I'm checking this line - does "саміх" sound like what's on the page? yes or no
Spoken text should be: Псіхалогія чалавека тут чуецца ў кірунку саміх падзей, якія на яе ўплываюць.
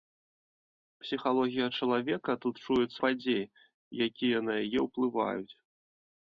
no